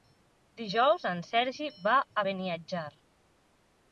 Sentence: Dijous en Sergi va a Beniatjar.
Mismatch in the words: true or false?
false